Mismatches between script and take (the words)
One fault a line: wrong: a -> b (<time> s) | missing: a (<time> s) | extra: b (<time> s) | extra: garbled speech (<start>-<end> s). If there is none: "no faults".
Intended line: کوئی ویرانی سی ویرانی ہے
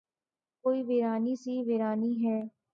no faults